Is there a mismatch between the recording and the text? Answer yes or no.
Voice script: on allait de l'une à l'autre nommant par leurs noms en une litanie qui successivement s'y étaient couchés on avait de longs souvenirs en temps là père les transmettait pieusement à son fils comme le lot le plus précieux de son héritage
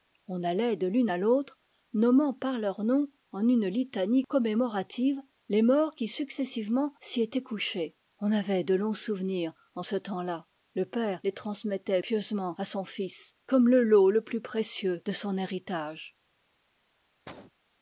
yes